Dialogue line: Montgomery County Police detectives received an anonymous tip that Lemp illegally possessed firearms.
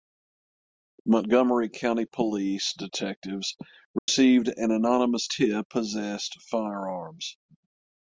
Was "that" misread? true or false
true